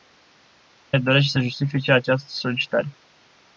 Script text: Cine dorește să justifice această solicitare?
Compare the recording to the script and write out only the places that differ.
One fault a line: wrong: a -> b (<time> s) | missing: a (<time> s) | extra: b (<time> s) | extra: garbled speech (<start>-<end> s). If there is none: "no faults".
no faults